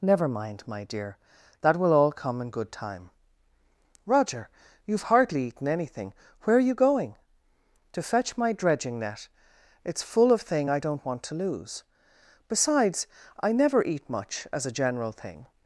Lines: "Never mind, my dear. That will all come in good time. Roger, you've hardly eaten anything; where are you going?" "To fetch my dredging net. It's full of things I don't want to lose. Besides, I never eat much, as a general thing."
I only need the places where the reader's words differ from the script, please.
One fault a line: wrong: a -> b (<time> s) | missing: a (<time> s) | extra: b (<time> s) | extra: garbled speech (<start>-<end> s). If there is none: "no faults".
wrong: things -> thing (10.4 s)